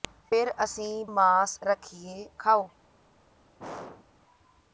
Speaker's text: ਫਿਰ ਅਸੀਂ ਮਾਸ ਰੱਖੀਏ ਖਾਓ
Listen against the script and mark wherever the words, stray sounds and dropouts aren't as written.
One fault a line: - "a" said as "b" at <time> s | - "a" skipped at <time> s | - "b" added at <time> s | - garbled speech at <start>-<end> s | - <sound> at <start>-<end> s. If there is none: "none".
- throat clearing at 3.6-4.1 s